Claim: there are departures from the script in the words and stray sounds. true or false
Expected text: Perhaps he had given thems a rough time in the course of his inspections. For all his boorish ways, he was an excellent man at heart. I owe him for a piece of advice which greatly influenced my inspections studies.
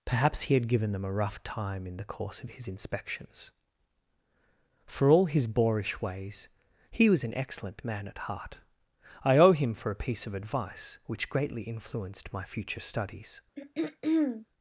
true